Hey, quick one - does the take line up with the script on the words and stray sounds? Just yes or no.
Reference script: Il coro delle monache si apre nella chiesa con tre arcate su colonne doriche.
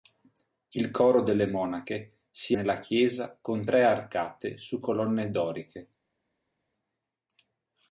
no